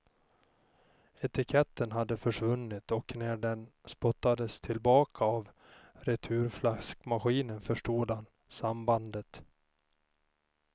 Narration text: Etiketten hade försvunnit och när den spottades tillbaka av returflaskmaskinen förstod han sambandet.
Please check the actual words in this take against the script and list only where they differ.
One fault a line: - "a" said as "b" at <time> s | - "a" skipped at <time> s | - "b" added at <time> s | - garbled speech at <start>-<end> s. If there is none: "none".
none